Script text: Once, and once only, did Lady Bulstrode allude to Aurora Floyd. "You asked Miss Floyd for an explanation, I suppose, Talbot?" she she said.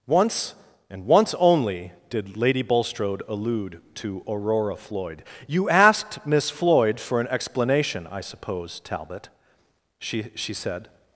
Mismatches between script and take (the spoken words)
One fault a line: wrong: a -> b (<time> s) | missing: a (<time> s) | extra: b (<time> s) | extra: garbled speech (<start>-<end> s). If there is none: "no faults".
no faults